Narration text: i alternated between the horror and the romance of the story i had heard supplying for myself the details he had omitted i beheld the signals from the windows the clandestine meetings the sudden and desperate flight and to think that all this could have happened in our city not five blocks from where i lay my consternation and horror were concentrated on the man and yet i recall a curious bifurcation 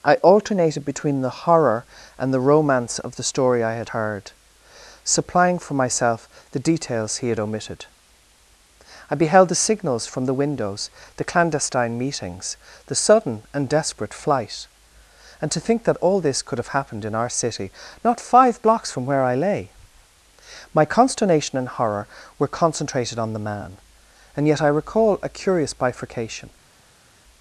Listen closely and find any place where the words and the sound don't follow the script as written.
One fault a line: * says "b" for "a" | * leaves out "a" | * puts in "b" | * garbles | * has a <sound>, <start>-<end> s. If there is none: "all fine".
all fine